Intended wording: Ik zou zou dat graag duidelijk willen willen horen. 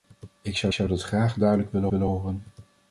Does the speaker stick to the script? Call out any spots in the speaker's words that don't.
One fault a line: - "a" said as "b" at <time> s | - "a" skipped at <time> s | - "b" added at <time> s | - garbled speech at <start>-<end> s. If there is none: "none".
none